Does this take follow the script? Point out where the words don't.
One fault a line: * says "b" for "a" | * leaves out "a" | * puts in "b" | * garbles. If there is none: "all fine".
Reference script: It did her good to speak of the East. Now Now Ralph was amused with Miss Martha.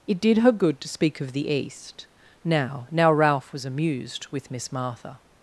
all fine